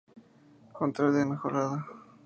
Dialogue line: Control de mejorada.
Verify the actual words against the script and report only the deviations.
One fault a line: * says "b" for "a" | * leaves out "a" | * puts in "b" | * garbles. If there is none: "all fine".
all fine